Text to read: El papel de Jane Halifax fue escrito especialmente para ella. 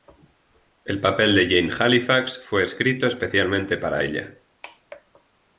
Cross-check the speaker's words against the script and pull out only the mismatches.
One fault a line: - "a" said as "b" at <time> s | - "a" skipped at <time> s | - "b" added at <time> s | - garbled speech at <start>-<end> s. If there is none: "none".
none